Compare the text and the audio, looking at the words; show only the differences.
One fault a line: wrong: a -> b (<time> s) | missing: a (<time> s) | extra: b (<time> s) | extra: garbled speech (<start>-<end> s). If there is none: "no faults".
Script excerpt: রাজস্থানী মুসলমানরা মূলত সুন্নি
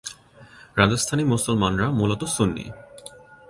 no faults